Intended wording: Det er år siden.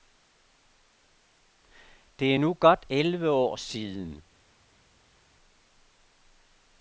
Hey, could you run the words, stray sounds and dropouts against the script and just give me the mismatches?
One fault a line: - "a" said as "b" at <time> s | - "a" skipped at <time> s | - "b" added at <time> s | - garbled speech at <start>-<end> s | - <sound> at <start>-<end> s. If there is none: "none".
- "nu godt elleve" added at 2.4 s